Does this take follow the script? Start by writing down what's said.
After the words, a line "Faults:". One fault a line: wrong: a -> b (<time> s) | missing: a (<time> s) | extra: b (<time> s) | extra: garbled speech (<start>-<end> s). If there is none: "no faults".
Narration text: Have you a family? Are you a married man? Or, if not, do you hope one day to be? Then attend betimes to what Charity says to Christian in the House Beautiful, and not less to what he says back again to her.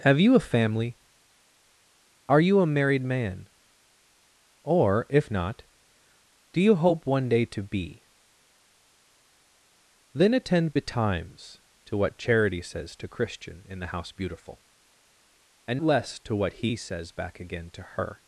Have you a family? Are you a married man? Or, if not, do you hope one day to be? Then attend betimes to what Charity says to Christian in the House Beautiful, and less to what he says back again to her.
Faults:
missing: not (15.8 s)